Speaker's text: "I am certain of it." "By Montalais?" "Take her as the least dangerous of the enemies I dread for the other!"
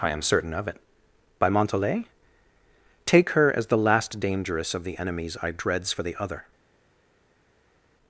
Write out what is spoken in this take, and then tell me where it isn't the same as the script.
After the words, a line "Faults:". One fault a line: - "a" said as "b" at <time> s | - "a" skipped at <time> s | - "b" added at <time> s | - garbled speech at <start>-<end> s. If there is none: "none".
"I am certain of it." "By Montalais?" "Take her as the last dangerous of the enemies I dreads for the other!"
Faults:
- "least" said as "last" at 3.8 s
- "dread" said as "dreads" at 5.5 s